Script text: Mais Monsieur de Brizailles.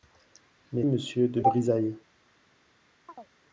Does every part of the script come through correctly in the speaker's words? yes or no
yes